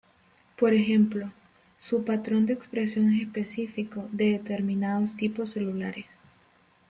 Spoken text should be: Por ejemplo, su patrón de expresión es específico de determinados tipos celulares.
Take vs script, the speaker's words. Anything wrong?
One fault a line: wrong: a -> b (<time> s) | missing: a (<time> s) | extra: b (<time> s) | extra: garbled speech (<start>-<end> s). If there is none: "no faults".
no faults